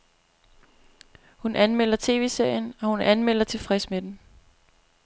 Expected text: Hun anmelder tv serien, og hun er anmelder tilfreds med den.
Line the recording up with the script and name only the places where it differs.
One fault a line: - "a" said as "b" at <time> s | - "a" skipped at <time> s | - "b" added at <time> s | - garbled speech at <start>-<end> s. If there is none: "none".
none